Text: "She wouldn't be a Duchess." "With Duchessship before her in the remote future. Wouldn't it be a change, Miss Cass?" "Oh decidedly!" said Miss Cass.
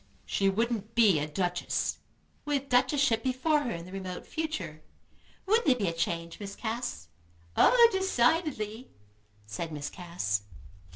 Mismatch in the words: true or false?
false